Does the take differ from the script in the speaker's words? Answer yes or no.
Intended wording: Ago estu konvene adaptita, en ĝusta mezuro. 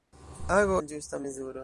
yes